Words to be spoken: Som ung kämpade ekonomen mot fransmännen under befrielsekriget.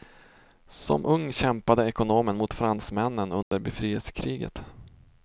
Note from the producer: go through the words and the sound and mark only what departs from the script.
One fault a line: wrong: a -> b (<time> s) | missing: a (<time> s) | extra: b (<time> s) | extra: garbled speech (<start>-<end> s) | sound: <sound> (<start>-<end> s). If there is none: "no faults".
sound: dropout (3.4-3.5 s)